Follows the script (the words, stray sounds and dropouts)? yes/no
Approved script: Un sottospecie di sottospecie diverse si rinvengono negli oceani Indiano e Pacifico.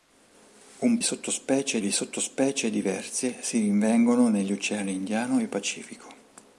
yes